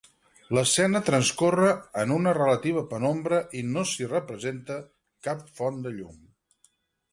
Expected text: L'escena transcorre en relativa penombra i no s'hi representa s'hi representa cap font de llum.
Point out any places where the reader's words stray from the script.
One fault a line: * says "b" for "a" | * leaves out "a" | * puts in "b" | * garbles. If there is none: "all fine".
* puts in "una"
* leaves out "s'hi representa"